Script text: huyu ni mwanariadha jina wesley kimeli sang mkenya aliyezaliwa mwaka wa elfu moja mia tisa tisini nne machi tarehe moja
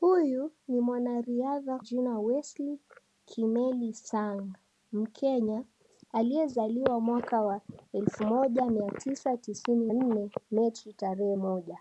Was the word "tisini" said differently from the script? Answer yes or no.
no